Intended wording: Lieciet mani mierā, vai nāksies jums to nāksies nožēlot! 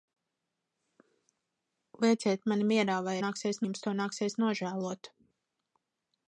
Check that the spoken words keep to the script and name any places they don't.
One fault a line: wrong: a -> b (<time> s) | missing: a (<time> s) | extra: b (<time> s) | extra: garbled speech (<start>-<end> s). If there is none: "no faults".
no faults